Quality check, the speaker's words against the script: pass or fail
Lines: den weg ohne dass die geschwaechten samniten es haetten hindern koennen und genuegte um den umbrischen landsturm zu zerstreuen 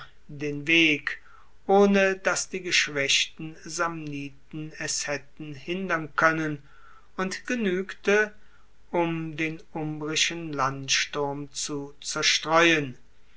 pass